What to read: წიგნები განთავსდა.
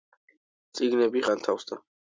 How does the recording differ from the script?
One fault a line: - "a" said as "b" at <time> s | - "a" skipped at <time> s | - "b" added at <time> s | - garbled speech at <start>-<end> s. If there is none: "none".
none